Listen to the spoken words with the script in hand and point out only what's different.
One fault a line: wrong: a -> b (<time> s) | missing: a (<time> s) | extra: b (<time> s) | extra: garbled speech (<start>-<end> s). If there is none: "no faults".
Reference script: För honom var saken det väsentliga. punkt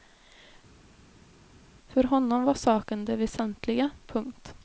no faults